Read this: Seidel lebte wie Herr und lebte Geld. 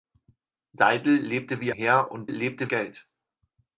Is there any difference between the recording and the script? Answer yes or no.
no